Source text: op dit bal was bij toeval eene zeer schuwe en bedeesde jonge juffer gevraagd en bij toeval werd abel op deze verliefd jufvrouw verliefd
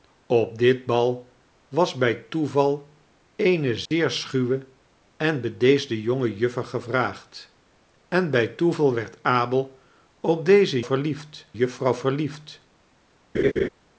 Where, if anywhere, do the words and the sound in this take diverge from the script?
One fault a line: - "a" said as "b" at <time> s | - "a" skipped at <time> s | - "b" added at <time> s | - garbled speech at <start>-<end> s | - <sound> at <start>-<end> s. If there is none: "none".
- dropout at 3.9-3.9 s
- laugh at 13.3-13.7 s